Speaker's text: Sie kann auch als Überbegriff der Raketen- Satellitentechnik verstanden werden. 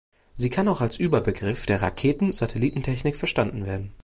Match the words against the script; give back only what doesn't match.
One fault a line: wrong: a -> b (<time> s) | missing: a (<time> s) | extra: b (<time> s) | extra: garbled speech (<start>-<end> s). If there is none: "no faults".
no faults